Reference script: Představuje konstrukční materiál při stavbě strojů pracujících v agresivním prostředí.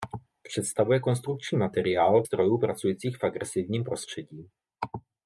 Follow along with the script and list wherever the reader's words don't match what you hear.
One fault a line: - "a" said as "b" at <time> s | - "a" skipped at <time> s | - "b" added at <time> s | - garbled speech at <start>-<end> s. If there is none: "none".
- "při stavbě" skipped at 2.2 s